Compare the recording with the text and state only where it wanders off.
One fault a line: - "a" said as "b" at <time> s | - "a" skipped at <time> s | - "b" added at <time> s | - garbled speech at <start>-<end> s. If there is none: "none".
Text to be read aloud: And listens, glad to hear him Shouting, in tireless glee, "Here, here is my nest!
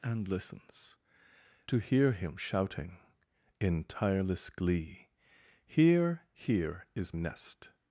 - "glad" skipped at 1.0 s
- "my" skipped at 7.2 s